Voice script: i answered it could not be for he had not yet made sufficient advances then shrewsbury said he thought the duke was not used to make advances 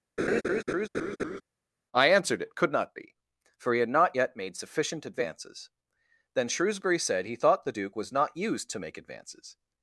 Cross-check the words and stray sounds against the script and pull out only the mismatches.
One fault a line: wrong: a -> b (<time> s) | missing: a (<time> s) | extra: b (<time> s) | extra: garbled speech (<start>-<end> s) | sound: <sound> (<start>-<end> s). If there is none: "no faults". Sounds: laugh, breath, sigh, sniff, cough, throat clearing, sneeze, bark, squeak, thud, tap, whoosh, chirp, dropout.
sound: laugh (0.2-1.4 s)